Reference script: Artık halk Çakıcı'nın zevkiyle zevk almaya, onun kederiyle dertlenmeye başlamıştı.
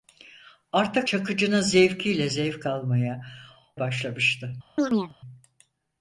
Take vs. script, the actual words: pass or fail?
fail